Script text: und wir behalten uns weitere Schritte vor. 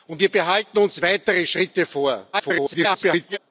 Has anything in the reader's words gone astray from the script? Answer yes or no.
yes